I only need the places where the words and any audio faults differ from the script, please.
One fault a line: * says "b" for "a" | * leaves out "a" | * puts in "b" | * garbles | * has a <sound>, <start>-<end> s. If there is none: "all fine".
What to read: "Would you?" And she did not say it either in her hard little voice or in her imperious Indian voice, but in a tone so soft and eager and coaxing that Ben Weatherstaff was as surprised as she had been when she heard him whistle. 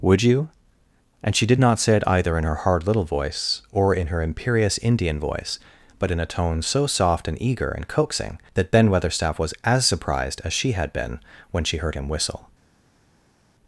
all fine